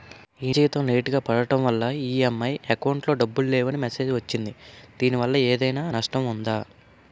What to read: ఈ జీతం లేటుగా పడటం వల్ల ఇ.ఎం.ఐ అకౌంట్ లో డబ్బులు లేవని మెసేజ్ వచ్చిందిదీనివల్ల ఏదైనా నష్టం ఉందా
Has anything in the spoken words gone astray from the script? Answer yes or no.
no